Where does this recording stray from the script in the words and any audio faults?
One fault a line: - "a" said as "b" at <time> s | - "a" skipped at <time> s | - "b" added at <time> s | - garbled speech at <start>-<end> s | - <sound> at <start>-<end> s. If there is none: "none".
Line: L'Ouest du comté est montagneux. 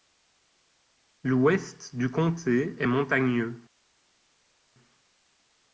none